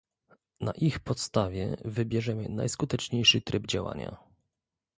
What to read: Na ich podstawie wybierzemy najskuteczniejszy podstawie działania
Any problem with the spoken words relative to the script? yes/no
yes